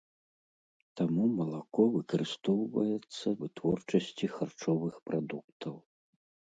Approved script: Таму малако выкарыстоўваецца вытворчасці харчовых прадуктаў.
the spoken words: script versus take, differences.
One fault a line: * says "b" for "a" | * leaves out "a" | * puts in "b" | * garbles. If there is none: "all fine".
all fine